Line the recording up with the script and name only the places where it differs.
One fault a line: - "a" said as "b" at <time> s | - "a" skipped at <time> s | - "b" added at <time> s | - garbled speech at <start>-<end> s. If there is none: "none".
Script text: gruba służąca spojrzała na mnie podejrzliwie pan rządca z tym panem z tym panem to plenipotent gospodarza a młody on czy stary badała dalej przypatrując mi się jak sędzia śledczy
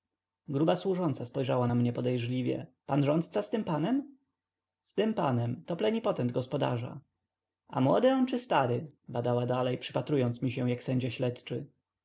none